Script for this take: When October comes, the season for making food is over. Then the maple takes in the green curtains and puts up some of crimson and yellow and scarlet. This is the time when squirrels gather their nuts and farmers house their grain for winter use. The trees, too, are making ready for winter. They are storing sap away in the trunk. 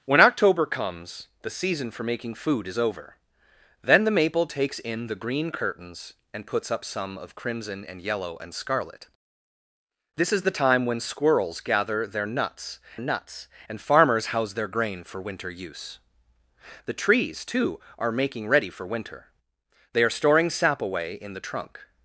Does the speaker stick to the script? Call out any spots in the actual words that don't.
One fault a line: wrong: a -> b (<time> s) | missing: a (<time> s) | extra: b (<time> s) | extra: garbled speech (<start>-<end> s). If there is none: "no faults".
extra: nuts (13.0 s)